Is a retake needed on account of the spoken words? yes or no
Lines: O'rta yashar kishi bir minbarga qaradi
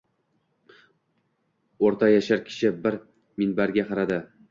no